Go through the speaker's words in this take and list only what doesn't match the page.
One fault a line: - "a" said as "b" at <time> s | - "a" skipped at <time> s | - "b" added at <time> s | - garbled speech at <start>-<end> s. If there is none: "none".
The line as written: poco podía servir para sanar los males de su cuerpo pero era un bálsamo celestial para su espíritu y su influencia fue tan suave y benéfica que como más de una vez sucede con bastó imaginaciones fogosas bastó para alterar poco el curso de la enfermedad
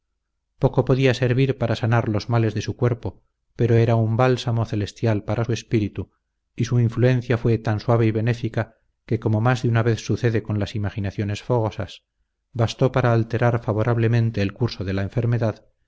- "bastó" said as "las" at 10.6 s
- "poco" said as "favorablemente" at 13.6 s